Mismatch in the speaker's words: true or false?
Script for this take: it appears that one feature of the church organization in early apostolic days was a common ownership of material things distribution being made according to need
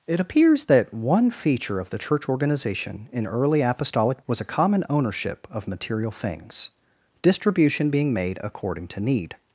true